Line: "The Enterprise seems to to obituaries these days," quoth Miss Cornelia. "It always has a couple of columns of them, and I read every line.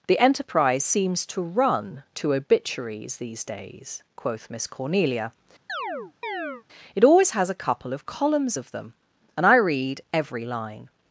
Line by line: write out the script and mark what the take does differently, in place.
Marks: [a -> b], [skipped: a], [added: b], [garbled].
"The Enterprise seems to [added: run] to obituaries these days," quoth Miss Cornelia. "It always has a couple of columns of them, and I read every line.